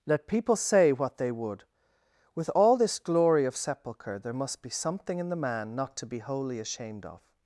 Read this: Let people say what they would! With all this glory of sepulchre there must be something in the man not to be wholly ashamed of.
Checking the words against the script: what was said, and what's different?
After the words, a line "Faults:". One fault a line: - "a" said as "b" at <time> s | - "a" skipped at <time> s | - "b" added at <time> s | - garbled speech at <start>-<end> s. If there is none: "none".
Let people say what they would! With all this glory of sepulchre there must be something in the man not to be wholly ashamed of.
Faults:
none